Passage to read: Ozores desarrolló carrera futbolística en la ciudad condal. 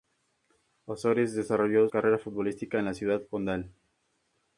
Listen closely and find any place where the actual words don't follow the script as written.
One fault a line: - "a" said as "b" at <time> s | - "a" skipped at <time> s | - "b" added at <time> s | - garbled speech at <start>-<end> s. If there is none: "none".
none